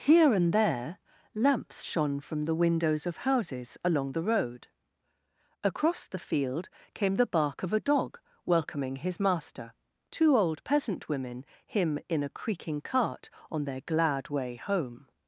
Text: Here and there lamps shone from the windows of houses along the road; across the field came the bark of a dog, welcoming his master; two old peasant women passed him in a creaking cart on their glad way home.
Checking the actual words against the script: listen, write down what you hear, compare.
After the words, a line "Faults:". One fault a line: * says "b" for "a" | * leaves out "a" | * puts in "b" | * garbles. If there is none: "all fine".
Here and there lamps shone from the windows of houses along the road; across the field came the bark of a dog, welcoming his master; two old peasant women him in a creaking cart on their glad way home.
Faults:
* leaves out "passed"